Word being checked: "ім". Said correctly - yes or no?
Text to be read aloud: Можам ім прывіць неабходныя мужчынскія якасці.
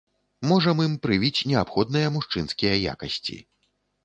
yes